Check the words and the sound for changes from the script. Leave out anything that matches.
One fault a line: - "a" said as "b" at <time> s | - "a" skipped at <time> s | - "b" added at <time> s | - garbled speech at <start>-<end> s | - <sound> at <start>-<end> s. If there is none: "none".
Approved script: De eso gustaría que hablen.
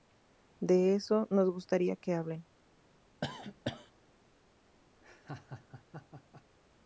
- "nos" added at 1.3 s
- cough at 3.2-3.9 s
- laugh at 5.0-6.4 s